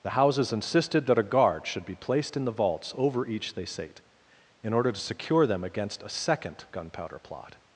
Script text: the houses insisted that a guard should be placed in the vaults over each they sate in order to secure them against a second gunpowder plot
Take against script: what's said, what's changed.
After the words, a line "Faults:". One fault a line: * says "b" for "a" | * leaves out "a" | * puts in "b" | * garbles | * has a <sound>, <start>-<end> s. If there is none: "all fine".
the houses insisted that a guard should be placed in the vaults over each they sate in order to secure them against a second gunpowder plot
Faults:
all fine